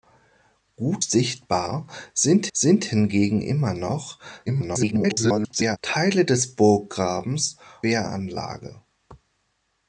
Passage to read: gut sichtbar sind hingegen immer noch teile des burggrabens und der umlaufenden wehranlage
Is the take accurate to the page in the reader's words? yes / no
no